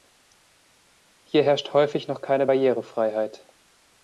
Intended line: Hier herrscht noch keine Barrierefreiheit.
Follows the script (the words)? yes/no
no